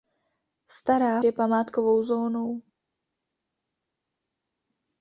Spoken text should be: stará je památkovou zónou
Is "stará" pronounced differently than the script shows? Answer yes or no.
no